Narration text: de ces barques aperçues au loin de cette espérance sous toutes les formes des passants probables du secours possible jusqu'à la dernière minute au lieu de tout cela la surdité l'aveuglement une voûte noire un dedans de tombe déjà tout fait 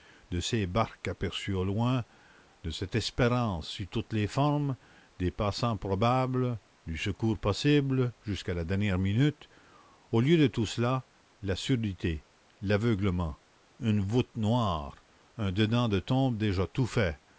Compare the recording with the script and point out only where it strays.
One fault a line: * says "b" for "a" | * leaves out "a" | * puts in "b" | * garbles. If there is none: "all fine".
all fine